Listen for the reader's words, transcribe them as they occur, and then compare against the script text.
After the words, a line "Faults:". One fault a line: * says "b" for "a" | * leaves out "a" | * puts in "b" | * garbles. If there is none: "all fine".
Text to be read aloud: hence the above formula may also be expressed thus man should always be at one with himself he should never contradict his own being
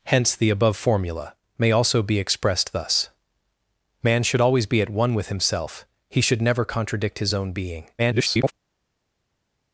hence the above formula may also be expressed thus man should always be at one with himself he should never contradict his own being [garbled]
Faults:
* garbles